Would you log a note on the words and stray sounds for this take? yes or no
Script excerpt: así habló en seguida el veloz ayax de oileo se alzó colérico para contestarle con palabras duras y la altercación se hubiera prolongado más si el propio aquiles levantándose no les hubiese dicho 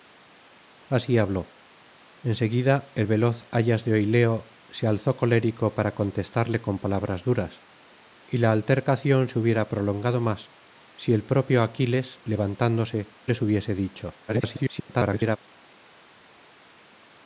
yes